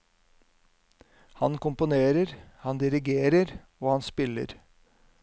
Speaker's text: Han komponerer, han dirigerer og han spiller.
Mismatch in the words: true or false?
false